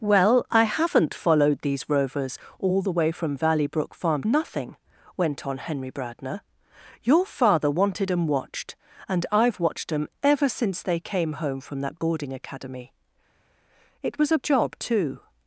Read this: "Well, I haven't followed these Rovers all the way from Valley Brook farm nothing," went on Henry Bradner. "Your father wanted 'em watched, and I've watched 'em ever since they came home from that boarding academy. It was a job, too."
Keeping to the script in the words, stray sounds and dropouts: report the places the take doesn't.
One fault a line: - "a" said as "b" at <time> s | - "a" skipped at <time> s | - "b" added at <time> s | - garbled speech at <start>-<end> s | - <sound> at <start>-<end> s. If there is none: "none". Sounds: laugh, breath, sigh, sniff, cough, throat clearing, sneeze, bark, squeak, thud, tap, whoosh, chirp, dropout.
none